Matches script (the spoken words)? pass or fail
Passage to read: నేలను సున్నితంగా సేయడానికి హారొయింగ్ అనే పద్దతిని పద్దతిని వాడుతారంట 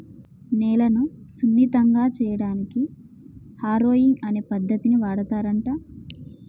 fail